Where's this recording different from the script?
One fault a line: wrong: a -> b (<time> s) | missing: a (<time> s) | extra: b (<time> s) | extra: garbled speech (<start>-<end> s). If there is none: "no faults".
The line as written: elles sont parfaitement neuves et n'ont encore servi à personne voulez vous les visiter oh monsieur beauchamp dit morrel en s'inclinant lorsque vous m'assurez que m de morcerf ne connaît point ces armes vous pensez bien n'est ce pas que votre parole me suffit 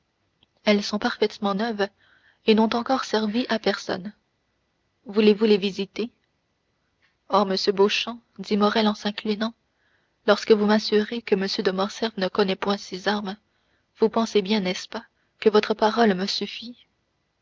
no faults